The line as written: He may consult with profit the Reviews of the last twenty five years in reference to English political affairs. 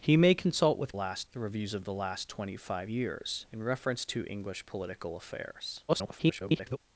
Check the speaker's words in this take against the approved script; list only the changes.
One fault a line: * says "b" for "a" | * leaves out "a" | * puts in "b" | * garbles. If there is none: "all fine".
* says "last" for "profit"
* garbles